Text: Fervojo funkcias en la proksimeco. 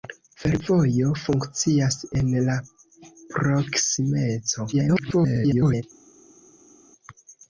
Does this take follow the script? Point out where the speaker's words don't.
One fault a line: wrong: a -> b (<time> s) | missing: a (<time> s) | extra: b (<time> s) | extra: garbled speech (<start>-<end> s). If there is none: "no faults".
extra: garbled speech (4.7-5.8 s)